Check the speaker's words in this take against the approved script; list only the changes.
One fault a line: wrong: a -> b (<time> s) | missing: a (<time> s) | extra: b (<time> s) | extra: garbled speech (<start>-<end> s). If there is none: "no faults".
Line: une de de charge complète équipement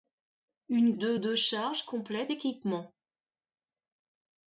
no faults